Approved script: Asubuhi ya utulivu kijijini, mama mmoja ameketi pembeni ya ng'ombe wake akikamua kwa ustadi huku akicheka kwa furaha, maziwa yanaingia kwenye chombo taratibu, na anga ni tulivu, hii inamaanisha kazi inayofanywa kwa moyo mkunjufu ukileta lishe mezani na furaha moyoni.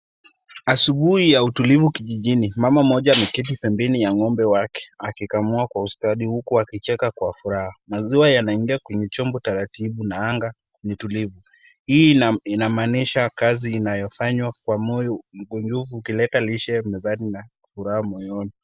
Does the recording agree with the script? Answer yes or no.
yes